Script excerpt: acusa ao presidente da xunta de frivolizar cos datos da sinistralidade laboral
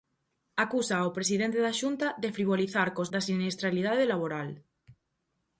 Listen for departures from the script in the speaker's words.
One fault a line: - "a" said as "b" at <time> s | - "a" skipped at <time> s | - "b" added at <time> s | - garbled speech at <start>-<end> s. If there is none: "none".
- "datos" skipped at 3.1 s